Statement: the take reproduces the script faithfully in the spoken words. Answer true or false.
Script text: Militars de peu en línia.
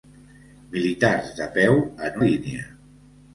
true